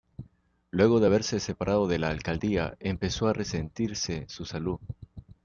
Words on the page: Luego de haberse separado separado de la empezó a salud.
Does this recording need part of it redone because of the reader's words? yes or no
yes